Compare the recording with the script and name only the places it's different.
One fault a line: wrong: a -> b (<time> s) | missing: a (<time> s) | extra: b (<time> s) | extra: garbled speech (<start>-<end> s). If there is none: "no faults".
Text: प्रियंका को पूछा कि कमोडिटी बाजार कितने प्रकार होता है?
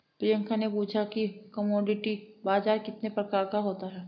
wrong: को -> ने (0.6 s)
extra: का (3.5 s)